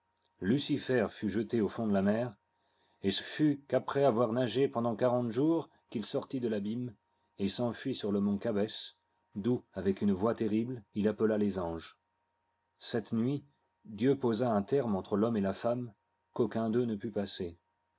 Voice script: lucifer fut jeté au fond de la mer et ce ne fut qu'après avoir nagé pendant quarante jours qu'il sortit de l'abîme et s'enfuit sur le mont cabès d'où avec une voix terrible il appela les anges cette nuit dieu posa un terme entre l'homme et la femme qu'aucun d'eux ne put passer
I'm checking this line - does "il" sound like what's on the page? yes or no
yes